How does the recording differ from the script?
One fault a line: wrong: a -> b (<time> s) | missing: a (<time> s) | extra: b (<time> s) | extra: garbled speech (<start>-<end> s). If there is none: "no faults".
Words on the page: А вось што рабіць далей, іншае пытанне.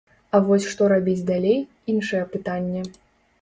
no faults